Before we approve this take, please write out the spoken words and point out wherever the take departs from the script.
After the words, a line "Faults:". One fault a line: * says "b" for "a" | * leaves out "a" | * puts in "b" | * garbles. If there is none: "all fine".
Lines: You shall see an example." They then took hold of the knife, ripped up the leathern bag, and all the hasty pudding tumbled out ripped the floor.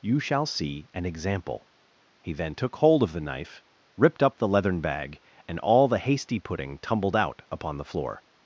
You shall see an example." He then took hold of the knife, ripped up the leathern bag, and all the hasty pudding tumbled out upon the floor.
Faults:
* says "He" for "They"
* says "upon" for "ripped"